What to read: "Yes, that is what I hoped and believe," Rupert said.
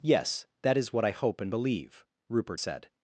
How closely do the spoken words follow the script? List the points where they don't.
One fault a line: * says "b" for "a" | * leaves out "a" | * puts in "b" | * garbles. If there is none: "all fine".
* says "hope" for "hoped"